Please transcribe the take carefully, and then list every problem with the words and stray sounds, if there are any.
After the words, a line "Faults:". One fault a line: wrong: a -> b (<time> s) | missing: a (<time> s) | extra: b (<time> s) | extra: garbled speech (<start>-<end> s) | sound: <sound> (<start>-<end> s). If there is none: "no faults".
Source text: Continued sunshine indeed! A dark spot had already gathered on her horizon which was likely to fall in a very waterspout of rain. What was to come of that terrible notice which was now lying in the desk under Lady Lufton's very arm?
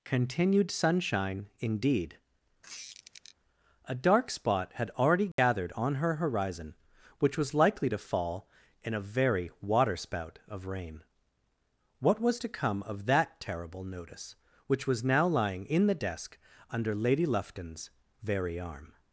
Continued sunshine indeed! A dark spot had already gathered on her horizon which was likely to fall in a very waterspout of rain. What was to come of that terrible notice which was now lying in the desk under Lady Lufton's very arm?
Faults:
sound: squeak (2.6-3.4 s)
sound: dropout (5.3-5.4 s)